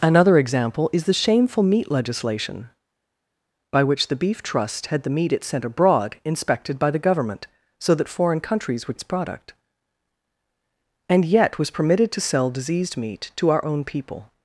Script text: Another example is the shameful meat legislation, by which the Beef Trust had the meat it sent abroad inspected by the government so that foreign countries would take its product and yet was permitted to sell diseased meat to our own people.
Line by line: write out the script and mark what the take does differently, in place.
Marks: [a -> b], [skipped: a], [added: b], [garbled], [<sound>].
Another example is the shameful meat legislation, by which the Beef Trust had the meat it sent abroad inspected by the government so that foreign countries would [skipped: take] its product and yet was permitted to sell diseased meat to our own people.